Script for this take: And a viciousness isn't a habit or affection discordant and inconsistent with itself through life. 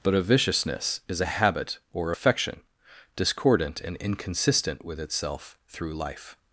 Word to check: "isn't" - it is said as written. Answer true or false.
false